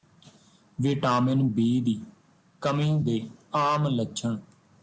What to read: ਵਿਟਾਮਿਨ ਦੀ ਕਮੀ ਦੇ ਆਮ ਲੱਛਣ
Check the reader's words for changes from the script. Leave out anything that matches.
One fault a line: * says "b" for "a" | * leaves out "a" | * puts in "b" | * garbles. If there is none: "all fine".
* puts in "ਬੀ"